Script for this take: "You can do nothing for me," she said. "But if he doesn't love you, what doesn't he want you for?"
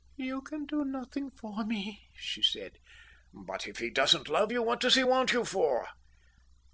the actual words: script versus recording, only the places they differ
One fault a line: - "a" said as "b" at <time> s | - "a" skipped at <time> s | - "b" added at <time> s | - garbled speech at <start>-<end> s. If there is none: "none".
- "doesn't" said as "does" at 4.8 s